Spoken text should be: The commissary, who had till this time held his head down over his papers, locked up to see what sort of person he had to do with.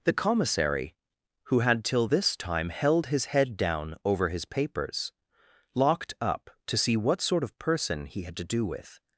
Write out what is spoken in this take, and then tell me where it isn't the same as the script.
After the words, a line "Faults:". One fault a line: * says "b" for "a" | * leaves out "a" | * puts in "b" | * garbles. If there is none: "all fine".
The commissary, who had till this time held his head down over his papers, locked up to see what sort of person he had to do with.
Faults:
all fine